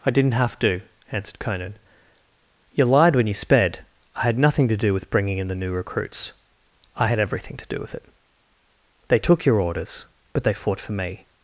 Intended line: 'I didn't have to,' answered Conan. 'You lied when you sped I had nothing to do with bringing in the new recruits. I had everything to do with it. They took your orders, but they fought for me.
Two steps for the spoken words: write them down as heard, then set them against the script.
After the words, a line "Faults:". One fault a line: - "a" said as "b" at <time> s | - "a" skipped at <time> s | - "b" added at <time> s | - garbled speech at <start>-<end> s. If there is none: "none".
'I didn't have to,' answered Conan. 'You lied when you sped I had nothing to do with bringing in the new recruits. I had everything to do with it. They took your orders, but they fought for me.
Faults:
none